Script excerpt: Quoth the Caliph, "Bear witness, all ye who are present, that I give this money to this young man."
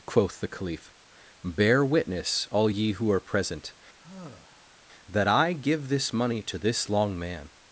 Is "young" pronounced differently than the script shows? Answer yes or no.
yes